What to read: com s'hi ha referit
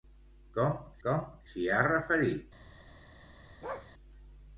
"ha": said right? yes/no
yes